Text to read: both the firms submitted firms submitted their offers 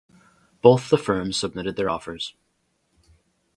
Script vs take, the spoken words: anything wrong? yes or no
yes